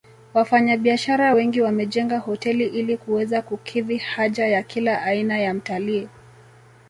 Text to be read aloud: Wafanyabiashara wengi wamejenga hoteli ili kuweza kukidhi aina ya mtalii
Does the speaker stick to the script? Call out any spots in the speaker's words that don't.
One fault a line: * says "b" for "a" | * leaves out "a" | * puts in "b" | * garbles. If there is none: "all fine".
* puts in "haja ya kila"